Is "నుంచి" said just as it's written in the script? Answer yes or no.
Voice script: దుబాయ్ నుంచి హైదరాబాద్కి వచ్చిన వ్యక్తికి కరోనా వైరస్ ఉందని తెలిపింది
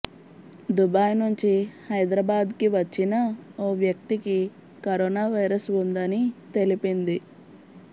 yes